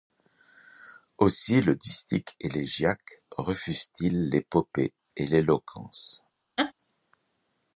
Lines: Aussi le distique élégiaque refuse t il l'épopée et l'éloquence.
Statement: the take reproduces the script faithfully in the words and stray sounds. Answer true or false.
false